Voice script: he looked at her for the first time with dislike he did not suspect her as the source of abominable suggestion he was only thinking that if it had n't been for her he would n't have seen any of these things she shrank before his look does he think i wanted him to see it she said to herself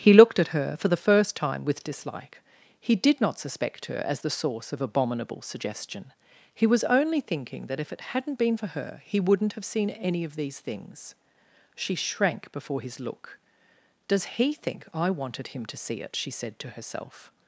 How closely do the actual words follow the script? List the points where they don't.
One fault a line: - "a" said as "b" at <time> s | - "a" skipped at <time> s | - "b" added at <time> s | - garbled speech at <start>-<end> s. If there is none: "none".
none